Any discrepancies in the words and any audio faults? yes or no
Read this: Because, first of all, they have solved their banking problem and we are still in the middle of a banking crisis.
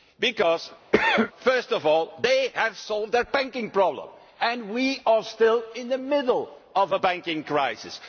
yes